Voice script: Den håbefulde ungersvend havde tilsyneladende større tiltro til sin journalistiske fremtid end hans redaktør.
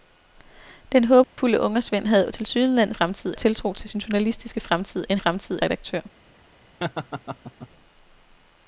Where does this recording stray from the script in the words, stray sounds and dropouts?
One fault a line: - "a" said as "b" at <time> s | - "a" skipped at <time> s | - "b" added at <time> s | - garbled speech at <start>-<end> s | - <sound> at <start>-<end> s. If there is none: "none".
- dropout at 1.2-1.4 s
- "større" said as "fremtid" at 2.9 s
- "hans" said as "fremtid" at 5.1 s
- laugh at 6.8-7.7 s